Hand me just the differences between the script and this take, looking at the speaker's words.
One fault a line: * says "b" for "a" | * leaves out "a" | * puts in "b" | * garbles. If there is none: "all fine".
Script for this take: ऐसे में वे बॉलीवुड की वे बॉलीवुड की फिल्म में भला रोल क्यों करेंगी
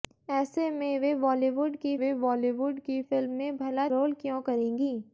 all fine